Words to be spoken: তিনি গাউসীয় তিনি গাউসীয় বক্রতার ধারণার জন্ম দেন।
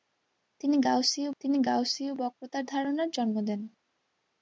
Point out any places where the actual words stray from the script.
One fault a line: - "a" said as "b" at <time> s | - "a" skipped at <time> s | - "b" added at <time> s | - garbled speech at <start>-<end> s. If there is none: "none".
none